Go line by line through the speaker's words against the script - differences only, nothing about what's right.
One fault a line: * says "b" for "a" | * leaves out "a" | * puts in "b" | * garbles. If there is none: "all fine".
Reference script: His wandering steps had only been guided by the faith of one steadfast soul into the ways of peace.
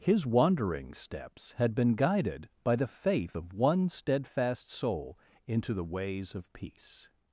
* leaves out "only"